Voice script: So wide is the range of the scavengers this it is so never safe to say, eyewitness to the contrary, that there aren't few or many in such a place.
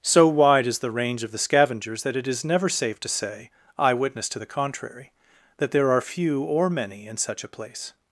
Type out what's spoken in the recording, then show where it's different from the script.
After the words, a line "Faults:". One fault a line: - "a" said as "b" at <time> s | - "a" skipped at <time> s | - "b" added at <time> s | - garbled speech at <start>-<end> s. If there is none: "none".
So wide is the range of the scavengers that it is never safe to say, eyewitness to the contrary, that there are few or many in such a place.
Faults:
- "this" said as "that" at 2.0 s
- "so" skipped at 2.4 s
- "aren't" said as "are" at 5.9 s